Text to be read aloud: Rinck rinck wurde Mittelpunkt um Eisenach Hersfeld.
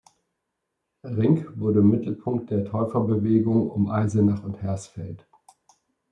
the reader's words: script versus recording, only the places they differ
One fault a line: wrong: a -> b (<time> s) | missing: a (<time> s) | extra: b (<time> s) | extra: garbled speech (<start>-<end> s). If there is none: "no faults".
missing: rinck (1.6 s)
extra: der Täuferbewegung (2.5 s)
extra: und (4.4 s)